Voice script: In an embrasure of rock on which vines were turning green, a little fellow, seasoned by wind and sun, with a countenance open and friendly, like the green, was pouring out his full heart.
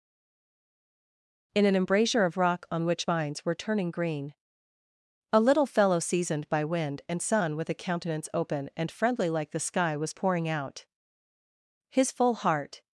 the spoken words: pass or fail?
fail